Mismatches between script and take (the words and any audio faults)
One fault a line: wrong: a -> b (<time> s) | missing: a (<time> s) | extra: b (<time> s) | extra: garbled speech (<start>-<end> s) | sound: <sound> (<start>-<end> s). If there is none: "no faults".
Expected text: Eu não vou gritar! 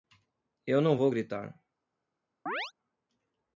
sound: chirp (2.5-2.7 s)